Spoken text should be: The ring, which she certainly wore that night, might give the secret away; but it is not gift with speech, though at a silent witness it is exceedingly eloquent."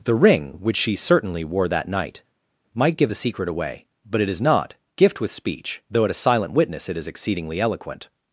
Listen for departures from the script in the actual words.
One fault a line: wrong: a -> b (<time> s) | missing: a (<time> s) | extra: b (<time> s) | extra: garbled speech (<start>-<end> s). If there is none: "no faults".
no faults